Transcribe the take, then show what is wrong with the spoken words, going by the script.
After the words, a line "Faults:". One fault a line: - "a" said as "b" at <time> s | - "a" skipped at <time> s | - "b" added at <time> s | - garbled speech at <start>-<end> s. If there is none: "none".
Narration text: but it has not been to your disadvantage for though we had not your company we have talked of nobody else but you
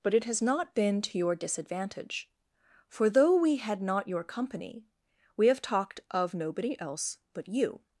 but it has not been to your disadvantage for though we had not your company we have talked of nobody else but you
Faults:
none